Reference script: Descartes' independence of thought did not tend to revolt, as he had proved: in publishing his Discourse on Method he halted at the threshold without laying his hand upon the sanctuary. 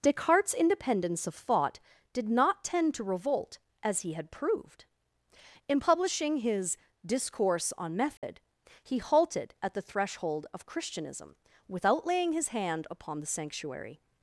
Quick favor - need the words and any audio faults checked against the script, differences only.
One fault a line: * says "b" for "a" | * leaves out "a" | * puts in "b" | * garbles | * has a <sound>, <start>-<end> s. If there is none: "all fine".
* has a dropout, 8.2-8.2 s
* puts in "of Christianism"